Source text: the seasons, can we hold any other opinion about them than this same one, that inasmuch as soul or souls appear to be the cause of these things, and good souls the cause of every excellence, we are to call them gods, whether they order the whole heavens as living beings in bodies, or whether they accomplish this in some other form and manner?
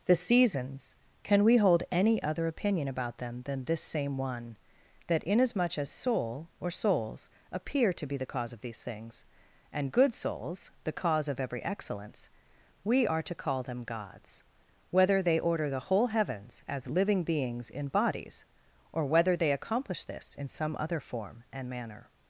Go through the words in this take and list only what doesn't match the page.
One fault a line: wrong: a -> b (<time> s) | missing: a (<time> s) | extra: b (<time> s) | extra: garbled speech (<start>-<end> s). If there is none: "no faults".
no faults